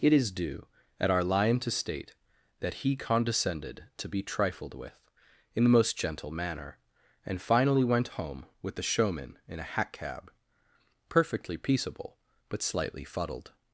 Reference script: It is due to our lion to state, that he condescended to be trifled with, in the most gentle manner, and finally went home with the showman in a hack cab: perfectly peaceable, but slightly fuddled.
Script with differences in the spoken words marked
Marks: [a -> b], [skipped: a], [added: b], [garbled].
It is due [to -> at] our lion to state, that he condescended to be trifled with, in the most gentle manner, and finally went home with the showman in a hack cab: perfectly peaceable, but slightly fuddled.